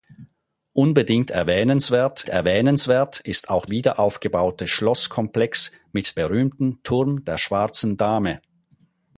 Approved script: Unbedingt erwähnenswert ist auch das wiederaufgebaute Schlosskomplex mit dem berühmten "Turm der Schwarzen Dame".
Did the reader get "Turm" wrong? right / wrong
right